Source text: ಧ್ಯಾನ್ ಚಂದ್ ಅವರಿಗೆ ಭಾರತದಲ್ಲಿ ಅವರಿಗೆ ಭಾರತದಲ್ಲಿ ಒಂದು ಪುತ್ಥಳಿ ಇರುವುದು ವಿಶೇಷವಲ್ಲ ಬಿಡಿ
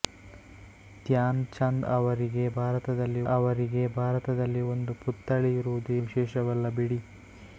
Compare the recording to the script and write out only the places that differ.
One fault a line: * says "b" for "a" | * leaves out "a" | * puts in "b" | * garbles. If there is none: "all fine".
all fine